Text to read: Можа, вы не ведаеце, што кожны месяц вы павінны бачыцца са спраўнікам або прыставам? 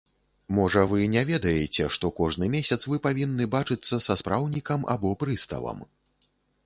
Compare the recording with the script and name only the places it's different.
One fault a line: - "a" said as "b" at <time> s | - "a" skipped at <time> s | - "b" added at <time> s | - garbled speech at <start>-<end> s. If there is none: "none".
none